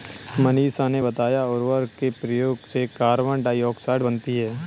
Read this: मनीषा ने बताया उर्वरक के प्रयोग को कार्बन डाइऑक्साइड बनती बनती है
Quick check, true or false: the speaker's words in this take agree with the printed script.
false